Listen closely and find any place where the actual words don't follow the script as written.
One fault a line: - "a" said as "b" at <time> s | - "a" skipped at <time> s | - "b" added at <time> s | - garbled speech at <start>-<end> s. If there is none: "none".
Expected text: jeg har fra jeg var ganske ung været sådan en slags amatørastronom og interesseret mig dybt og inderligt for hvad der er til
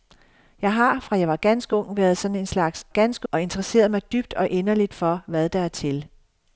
- "amatørastronom" said as "ganske" at 2.9 s